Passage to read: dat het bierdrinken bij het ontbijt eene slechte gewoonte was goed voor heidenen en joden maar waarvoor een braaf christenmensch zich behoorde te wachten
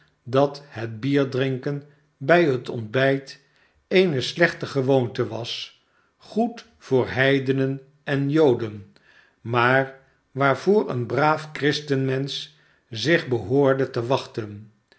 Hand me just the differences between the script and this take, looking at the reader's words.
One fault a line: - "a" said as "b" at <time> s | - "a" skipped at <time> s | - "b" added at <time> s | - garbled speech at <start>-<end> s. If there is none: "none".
none